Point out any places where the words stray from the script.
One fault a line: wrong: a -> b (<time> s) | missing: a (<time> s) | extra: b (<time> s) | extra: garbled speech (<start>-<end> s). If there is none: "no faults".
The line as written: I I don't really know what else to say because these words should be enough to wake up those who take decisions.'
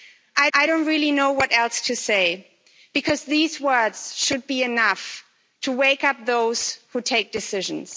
no faults